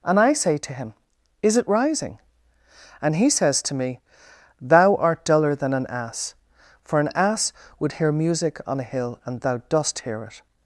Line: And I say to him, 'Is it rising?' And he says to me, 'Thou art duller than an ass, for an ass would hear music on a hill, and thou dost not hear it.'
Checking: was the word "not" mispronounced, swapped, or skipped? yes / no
yes